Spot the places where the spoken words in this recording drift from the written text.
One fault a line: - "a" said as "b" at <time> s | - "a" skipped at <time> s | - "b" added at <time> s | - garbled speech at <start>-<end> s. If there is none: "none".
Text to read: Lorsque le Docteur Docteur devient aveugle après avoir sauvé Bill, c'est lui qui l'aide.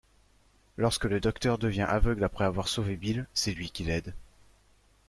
- "Docteur" skipped at 1.6 s